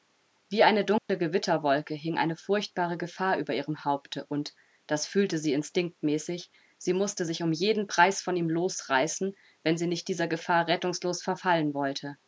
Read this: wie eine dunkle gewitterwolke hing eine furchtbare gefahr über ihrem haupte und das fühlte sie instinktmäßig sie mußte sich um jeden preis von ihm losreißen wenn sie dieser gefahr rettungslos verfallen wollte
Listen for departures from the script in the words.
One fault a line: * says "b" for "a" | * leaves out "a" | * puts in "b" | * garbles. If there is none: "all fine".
* puts in "nicht"